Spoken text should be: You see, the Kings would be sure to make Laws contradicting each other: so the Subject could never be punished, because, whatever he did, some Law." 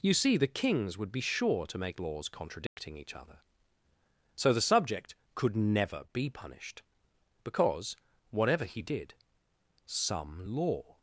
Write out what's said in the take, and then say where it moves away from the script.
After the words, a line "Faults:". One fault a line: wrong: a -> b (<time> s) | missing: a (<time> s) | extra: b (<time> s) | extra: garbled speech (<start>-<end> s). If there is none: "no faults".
You see, the Kings would be sure to make Laws contradicting each other: so the Subject could never be punished, because, whatever he did, some Law."
Faults:
no faults